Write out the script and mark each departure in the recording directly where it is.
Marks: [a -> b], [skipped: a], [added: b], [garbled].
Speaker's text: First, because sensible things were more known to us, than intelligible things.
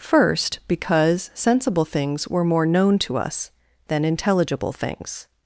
First, because sensible things were more known to us, than intelligible things.